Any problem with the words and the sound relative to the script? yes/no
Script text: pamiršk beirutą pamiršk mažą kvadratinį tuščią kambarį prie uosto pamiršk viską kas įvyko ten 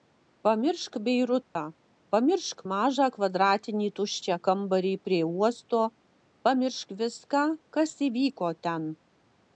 yes